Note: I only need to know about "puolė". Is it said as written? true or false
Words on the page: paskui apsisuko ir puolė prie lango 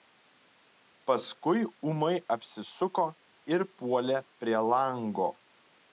true